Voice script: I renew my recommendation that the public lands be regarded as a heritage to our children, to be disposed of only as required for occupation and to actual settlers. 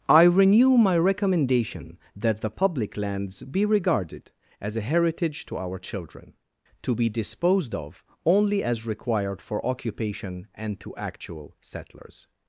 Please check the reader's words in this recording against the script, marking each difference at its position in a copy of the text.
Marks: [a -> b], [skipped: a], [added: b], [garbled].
I renew my recommendation that the public lands be regarded as a heritage to our children, to be disposed of only as required for occupation and to actual settlers.